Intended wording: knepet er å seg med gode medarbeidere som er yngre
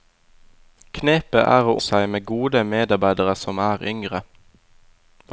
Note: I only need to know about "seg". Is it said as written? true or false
true